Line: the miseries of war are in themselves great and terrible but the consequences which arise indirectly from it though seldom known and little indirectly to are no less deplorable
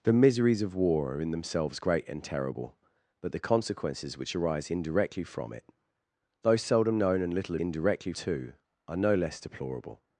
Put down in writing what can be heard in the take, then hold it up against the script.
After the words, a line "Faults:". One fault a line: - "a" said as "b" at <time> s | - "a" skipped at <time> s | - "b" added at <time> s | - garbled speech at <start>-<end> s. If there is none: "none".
the miseries of war are in themselves great and terrible but the consequences which arise indirectly from it though seldom known and little indirectly to are no less deplorable
Faults:
none